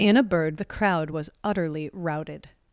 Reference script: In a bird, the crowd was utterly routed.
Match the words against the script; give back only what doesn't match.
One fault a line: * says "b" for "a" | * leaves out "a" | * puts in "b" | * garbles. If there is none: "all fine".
all fine